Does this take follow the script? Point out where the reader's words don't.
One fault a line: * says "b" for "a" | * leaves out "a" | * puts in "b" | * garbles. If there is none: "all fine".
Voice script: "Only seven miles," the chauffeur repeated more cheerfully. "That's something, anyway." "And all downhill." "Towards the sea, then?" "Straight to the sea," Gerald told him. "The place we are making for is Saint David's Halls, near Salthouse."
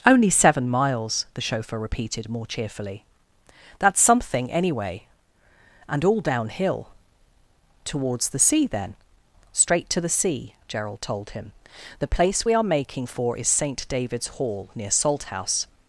* says "Hall" for "Halls"